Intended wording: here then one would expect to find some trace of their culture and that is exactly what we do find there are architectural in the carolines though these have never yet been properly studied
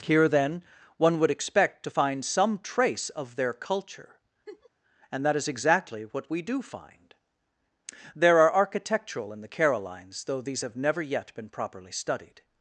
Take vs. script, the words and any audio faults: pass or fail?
fail